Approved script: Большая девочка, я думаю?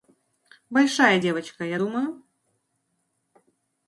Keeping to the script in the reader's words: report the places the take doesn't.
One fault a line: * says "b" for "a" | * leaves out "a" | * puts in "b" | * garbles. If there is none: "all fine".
all fine